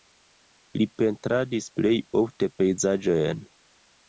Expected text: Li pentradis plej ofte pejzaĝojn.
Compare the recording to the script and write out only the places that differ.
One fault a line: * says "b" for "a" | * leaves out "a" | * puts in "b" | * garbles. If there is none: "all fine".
all fine